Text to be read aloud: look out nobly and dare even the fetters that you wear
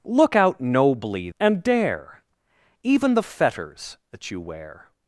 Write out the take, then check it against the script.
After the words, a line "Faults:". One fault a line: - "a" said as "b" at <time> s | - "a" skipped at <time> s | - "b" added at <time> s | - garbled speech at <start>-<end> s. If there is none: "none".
look out nobly and dare even the fetters that you wear
Faults:
none